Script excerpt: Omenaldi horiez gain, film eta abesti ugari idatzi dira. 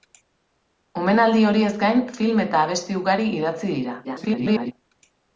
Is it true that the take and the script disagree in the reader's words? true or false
true